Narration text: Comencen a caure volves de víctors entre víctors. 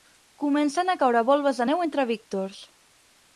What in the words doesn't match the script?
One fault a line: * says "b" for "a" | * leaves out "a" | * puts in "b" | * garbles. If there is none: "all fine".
* says "neu" for "víctors"